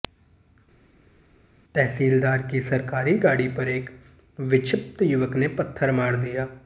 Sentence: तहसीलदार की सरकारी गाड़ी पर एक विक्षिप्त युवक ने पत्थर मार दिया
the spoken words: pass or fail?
pass